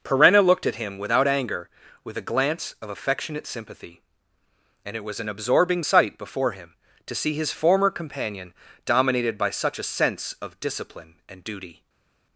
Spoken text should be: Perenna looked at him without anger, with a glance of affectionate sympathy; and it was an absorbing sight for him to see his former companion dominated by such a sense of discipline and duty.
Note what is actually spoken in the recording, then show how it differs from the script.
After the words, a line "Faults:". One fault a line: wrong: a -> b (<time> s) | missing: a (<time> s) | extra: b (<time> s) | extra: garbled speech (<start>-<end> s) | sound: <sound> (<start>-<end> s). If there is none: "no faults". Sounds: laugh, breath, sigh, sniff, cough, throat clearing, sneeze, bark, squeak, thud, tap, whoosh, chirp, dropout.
Perenna looked at him without anger, with a glance of affectionate sympathy; and it was an absorbing sight before him to see his former companion dominated by such a sense of discipline and duty.
Faults:
wrong: for -> before (6.2 s)